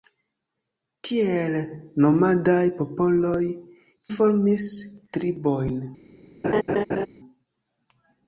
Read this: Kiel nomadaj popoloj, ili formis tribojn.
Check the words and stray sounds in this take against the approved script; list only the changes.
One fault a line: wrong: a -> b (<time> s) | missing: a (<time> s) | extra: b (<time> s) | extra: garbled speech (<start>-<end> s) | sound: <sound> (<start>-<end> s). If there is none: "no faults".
missing: ili (3.5 s)
sound: laugh (6.4-7.1 s)